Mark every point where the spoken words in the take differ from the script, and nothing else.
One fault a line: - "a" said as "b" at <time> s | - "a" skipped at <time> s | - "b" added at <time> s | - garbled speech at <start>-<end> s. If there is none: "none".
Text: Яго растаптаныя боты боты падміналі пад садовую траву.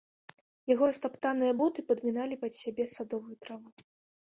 - "боты" skipped at 1.9 s
- "сябе" added at 2.6 s